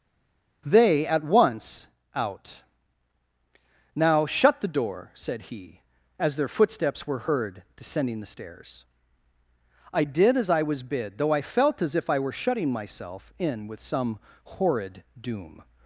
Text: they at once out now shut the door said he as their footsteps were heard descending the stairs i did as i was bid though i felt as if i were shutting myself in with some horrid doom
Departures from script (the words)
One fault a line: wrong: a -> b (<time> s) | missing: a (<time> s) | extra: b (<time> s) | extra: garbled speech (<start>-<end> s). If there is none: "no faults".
no faults